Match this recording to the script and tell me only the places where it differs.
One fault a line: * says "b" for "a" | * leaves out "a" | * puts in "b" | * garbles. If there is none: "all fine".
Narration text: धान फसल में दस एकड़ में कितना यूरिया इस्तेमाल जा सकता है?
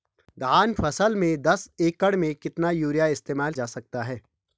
all fine